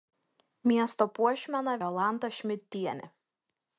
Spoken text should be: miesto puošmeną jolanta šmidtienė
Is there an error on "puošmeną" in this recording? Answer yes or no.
no